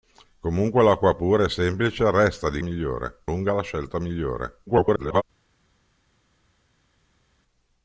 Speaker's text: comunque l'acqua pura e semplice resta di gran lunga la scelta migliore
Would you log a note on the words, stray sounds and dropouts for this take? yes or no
yes